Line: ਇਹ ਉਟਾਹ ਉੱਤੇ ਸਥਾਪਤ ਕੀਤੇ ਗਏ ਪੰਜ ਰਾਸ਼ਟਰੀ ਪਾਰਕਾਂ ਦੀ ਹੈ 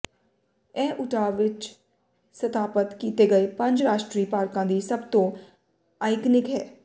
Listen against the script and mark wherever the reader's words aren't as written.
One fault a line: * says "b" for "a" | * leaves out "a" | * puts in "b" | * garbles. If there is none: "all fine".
* says "ਵਿੱਚ" for "ਉੱਤੇ"
* puts in "ਸਭ ਤੋਂ ਆਈਕਨਿਕ"